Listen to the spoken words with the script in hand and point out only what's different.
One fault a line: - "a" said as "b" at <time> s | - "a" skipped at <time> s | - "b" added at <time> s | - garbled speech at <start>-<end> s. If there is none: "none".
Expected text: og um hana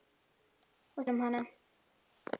none